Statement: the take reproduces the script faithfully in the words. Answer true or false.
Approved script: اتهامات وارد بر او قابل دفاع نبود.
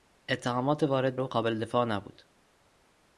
false